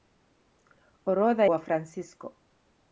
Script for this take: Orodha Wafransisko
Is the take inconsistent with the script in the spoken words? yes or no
no